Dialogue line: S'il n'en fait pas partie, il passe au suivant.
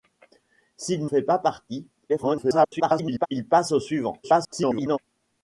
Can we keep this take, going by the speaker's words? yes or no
no